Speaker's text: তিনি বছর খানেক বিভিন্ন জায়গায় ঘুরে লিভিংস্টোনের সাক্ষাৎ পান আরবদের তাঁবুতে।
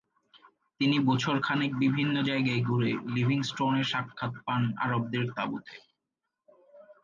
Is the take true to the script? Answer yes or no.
yes